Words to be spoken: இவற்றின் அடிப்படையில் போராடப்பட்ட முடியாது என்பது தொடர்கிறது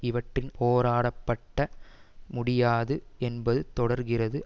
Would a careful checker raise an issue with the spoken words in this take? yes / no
yes